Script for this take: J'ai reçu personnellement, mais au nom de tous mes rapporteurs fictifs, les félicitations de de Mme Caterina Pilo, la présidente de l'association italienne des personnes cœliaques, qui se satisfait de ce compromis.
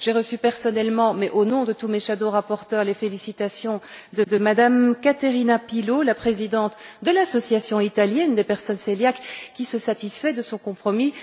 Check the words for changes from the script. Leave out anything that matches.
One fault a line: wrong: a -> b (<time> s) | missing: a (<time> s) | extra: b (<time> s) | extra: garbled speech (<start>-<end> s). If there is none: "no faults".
no faults